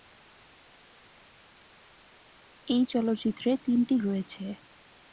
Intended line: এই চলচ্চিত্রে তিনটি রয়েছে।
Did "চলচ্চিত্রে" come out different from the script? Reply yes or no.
no